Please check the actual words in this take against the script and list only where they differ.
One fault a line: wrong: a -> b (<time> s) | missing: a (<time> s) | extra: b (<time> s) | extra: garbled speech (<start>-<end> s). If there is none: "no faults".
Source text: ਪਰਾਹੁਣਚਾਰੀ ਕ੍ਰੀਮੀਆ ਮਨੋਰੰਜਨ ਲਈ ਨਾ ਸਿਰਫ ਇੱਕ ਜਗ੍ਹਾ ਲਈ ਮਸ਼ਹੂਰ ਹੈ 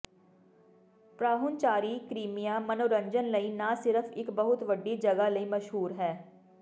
extra: ਬਹੁਤ ਵੱਡੀ (4.3 s)